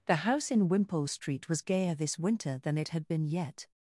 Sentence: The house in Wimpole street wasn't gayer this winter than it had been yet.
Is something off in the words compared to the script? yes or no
yes